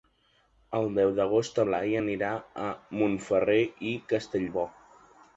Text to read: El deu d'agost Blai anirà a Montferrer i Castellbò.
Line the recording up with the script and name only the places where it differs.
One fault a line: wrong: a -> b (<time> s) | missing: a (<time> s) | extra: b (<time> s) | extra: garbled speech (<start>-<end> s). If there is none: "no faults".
no faults